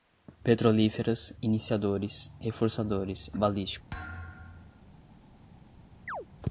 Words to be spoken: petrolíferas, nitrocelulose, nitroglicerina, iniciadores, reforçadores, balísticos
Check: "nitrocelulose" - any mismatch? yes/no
yes